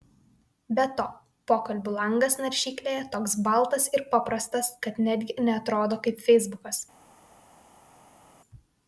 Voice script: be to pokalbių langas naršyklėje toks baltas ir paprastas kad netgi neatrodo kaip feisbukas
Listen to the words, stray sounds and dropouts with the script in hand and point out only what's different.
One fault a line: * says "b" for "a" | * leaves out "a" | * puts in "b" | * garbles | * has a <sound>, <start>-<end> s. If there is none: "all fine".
all fine